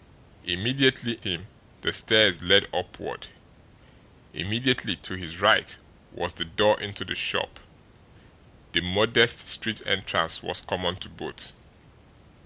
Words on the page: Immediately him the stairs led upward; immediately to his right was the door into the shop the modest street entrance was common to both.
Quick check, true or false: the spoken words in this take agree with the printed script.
true